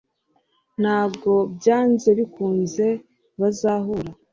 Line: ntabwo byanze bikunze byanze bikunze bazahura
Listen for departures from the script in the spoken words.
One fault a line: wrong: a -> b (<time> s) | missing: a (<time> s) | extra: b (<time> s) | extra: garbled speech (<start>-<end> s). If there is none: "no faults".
missing: byanze bikunze (2.9 s)